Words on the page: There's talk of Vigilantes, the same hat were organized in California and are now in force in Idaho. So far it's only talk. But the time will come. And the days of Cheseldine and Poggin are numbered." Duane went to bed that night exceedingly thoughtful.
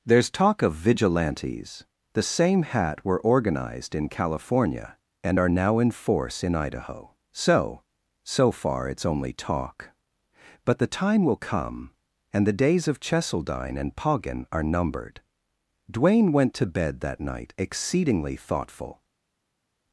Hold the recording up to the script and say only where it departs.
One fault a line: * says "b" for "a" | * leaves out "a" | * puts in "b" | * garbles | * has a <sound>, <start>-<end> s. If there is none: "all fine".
* puts in "So"